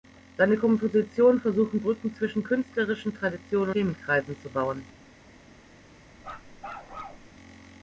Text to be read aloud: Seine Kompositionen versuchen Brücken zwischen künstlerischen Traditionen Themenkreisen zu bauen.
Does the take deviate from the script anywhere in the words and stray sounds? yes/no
yes